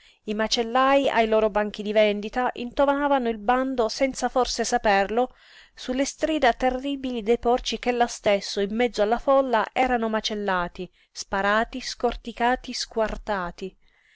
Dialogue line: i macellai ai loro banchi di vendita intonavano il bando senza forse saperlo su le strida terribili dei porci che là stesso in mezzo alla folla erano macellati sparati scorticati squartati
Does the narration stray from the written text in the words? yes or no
no